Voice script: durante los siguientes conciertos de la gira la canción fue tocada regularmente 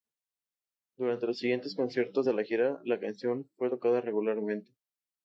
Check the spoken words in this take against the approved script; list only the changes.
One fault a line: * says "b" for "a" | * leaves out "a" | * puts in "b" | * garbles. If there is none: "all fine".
all fine